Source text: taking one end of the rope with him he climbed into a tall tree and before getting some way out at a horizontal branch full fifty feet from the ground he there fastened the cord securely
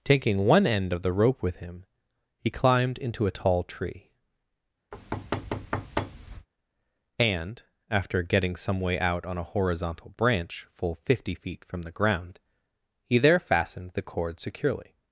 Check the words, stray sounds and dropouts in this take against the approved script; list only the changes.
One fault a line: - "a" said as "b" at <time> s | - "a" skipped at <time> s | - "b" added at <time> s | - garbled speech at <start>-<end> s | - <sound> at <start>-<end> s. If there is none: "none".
- thud at 4.9-6.5 s
- "before" said as "after" at 7.9 s
- "at" said as "on" at 9.2 s